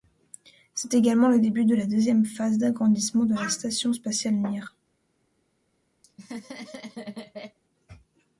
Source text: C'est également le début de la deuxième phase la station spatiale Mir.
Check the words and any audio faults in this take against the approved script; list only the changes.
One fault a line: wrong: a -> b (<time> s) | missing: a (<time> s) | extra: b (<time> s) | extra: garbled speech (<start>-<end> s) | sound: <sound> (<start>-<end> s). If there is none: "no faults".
extra: d'agrandissement de (2.6 s)
sound: laugh (6.0-7.6 s)